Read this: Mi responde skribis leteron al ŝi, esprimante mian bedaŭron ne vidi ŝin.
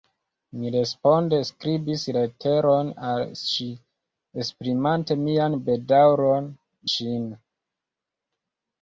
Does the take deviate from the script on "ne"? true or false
true